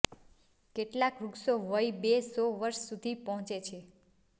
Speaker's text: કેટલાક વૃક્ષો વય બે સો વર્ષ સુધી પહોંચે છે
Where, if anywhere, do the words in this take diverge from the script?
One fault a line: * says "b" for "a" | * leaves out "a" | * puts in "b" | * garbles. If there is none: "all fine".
all fine